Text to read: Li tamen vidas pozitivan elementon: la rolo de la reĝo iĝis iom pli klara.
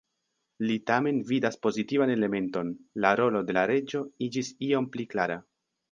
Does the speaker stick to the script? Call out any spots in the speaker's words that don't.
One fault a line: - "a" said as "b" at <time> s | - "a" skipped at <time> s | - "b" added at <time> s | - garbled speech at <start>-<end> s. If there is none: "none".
none